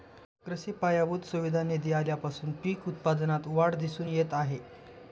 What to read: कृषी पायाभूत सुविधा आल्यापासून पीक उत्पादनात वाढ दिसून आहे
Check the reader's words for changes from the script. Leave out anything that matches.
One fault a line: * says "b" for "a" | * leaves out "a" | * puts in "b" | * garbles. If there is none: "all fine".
* puts in "निधी"
* puts in "येत"